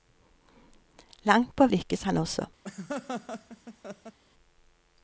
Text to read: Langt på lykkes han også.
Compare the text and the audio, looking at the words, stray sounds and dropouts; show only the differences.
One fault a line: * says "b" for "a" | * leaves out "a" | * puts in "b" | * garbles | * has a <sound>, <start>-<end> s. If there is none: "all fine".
* has a laugh, 2.6-4.2 s